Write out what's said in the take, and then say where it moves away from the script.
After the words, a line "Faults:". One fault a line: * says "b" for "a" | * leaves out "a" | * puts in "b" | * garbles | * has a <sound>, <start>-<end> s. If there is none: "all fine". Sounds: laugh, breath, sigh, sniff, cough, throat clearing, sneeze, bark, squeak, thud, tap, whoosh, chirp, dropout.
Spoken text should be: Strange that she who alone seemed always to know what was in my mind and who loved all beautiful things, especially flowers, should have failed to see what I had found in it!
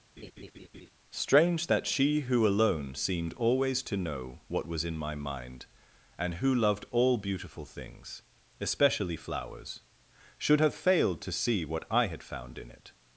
Strange that she who alone seemed always to know what was in my mind and who loved all beautiful things, especially flowers, should have failed to see what I had found in it!
Faults:
* has a laugh, 0.2-0.9 s